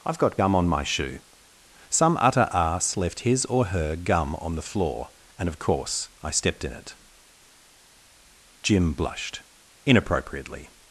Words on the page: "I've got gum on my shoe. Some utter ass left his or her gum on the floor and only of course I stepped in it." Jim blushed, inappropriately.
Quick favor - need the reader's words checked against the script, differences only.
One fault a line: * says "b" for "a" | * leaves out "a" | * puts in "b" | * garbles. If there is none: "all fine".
* leaves out "only"